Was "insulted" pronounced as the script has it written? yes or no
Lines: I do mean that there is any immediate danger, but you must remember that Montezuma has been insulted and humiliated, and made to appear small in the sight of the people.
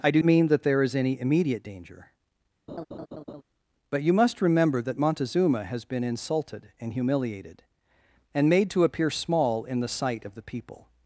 yes